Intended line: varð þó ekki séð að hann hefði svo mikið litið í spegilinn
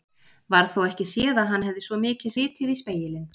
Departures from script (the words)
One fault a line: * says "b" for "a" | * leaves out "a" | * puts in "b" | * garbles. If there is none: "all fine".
all fine